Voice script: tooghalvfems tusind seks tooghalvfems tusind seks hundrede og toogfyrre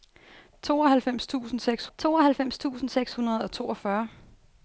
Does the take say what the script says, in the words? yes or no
yes